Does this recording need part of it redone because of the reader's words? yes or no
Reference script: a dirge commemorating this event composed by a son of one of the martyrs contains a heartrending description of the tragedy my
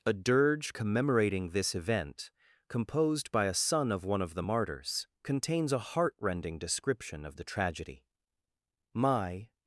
no